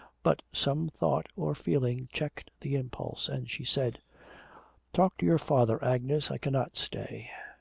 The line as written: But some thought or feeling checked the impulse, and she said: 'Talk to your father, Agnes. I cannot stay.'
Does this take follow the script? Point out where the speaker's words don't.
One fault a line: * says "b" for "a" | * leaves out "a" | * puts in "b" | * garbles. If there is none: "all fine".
all fine